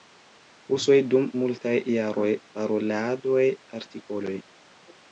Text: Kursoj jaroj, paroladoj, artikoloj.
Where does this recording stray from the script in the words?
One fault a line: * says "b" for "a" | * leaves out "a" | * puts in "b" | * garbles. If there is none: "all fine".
* puts in "dum multaj"